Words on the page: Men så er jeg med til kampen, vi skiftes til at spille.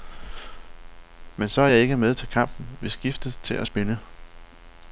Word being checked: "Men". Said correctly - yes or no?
yes